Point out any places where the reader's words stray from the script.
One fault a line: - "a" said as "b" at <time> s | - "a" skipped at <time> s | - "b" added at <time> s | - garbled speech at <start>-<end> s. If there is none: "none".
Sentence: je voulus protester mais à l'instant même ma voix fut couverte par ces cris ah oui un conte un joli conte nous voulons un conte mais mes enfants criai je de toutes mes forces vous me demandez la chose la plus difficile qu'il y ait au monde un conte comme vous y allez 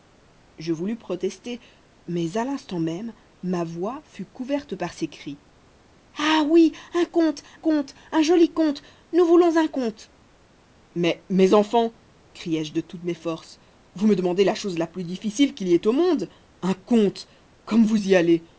- "conte" added at 7.5 s